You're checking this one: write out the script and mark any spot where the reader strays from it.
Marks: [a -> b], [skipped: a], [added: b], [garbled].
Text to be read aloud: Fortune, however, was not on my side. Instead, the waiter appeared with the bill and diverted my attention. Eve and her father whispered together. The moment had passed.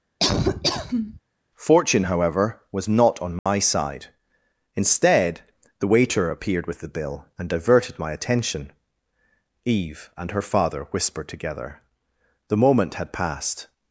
Fortune, however, was not on my side. Instead, the waiter appeared with the bill and diverted my attention. Eve and her father whispered together. The moment had passed.